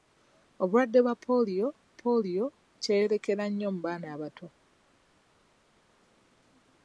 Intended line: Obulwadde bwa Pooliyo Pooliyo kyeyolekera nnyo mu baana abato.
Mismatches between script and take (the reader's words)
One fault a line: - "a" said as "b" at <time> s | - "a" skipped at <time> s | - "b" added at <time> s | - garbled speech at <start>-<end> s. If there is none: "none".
none